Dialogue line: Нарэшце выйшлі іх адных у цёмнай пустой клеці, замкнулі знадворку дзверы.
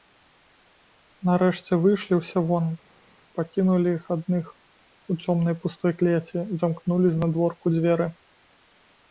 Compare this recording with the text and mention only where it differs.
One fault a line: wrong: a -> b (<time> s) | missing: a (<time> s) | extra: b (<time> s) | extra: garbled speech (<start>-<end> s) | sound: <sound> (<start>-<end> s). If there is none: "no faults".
extra: ўсе вон пакінулі (2.2 s)